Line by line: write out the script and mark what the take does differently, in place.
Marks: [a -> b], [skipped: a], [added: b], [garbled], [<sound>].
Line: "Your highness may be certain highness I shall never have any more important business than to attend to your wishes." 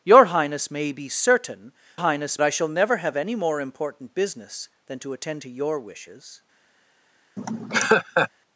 "Your highness may be certain highness I shall never have any more important business than to attend to your wishes." [laugh]